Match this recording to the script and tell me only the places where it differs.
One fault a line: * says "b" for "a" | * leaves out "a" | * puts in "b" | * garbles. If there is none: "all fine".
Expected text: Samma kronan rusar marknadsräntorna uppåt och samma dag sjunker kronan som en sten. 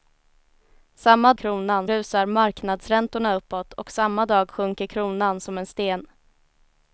all fine